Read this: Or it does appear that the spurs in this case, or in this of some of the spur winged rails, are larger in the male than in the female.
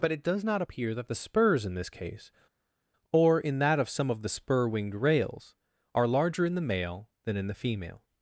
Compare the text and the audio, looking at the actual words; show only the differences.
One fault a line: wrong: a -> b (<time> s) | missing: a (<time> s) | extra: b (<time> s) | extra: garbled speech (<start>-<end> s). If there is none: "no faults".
wrong: Or -> But (0.0 s)
extra: not (0.4 s)
wrong: this -> that (3.6 s)